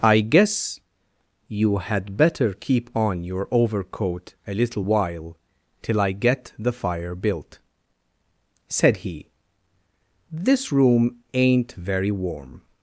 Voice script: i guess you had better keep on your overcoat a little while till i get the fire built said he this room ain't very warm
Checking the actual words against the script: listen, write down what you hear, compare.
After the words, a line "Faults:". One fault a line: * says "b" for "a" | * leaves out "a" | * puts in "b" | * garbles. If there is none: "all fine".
i guess you had better keep on your overcoat a little while till i get the fire built said he this room ain't very warm
Faults:
all fine